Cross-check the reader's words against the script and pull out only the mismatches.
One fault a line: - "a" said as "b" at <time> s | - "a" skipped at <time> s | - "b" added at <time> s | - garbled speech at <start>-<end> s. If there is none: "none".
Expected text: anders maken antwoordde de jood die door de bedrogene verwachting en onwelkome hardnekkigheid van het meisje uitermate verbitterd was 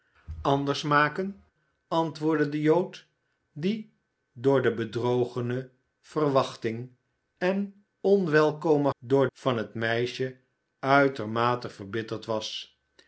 - "hardnekkigheid" said as "door" at 9.0 s